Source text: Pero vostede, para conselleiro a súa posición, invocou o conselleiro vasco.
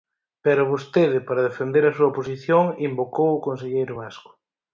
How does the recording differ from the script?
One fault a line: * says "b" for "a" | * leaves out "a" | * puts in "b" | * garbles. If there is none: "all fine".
* says "defender" for "conselleiro"